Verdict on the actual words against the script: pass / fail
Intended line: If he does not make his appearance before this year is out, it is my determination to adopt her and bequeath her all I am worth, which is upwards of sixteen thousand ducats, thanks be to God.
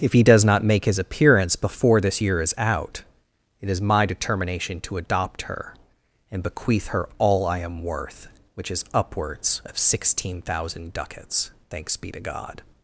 pass